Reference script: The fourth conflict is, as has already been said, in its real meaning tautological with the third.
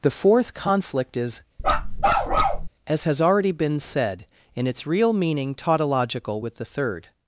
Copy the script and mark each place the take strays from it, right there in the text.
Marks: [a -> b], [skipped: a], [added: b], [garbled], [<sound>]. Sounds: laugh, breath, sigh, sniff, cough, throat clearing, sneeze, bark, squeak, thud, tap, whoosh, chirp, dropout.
The fourth conflict is, [bark] as has already been said, in its real meaning tautological with the third.